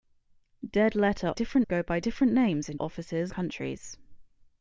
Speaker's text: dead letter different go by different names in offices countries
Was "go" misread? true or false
false